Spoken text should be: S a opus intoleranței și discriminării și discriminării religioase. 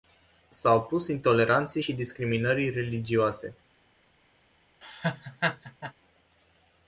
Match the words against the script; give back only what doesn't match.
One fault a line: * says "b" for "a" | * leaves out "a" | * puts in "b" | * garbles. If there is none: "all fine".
* leaves out "și discriminării"